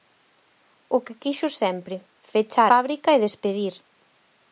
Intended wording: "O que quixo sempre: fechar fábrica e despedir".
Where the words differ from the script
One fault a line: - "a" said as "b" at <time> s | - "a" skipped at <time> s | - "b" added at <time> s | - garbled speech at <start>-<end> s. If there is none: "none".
none